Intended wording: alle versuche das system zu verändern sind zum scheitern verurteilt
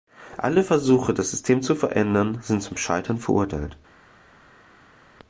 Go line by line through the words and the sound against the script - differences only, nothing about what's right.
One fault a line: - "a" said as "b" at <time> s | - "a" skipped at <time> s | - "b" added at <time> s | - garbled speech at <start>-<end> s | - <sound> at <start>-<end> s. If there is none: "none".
none